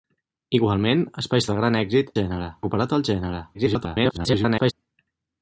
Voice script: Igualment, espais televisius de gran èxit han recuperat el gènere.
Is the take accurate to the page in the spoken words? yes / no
no